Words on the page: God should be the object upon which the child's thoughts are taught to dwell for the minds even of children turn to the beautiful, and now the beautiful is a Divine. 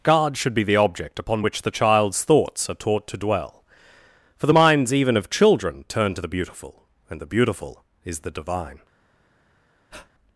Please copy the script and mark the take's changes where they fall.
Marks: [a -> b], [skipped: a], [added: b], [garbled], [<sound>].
God should be the object upon which the child's thoughts are taught to dwell for the minds even of children turn to the beautiful, and [skipped: now] the beautiful is [a -> the] Divine. [breath]